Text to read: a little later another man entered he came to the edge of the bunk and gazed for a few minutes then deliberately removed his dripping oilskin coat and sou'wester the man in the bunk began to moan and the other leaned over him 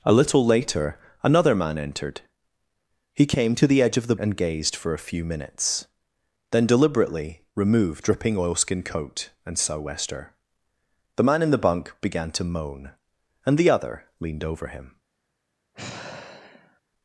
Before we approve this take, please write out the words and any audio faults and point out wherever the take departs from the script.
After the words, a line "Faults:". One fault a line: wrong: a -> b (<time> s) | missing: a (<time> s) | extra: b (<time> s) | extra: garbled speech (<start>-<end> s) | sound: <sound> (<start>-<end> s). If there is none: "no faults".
a little later another man entered he came to the edge of the and gazed for a few minutes then deliberately removed dripping oilskin coat and sou'wester the man in the bunk began to moan and the other leaned over him
Faults:
missing: bunk (4.2 s)
missing: his (8.0 s)
sound: sigh (15.7-16.8 s)